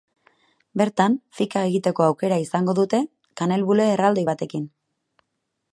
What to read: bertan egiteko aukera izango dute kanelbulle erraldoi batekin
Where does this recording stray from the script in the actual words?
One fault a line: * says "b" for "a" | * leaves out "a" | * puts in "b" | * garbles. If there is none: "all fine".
* puts in "fika"